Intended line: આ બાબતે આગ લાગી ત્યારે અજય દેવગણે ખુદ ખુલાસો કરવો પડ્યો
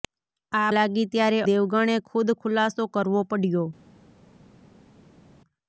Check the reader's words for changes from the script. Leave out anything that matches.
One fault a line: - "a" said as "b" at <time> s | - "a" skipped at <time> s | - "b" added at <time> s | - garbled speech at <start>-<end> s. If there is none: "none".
- "બાબતે આગ" skipped at 0.7 s
- "અજય" skipped at 1.4 s